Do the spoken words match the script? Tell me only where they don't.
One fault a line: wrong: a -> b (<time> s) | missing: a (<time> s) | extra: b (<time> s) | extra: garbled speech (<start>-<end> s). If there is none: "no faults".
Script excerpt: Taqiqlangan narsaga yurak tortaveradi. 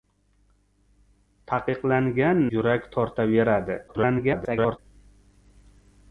missing: narsaga (2.4 s)
extra: garbled speech (3.9-4.8 s)